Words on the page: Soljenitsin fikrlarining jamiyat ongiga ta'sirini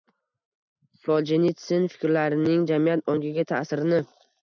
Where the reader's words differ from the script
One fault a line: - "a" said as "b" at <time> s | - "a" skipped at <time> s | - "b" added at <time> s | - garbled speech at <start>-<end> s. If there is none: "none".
none